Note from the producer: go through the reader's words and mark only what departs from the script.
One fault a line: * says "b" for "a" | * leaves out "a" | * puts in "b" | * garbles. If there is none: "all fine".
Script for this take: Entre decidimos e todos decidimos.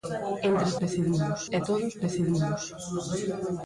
all fine